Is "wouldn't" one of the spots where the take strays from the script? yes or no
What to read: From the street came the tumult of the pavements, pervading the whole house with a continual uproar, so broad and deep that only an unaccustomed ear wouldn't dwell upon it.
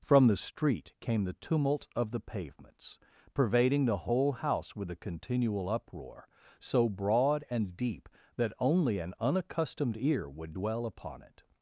yes